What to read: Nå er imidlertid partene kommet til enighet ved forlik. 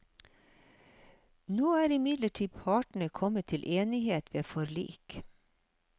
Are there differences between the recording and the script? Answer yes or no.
no